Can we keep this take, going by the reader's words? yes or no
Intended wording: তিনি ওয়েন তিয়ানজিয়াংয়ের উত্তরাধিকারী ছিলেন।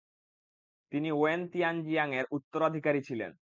yes